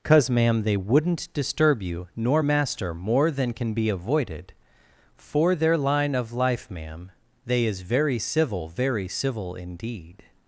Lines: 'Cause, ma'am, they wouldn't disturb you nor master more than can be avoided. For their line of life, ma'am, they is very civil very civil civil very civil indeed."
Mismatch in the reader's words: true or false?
true